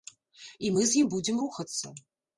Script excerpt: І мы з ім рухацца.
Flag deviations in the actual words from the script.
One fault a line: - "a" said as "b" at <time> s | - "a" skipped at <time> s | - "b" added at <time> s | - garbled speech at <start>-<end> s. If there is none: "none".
- "будзем" added at 1.1 s